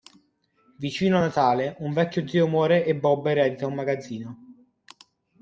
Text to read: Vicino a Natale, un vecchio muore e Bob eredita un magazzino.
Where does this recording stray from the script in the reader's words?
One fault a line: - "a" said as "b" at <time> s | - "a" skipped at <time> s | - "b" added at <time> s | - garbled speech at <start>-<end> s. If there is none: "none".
- "zio" added at 2.3 s